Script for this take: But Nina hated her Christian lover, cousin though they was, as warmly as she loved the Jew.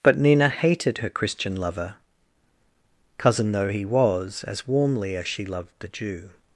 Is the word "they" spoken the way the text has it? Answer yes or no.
no